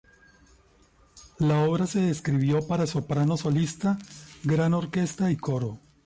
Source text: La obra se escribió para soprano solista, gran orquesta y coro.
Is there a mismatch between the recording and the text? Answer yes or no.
no